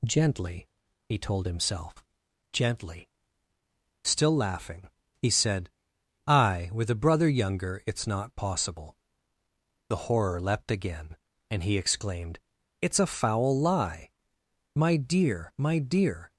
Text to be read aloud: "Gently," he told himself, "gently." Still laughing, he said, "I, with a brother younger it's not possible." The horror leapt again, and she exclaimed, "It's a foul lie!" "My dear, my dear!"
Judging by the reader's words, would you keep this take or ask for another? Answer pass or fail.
fail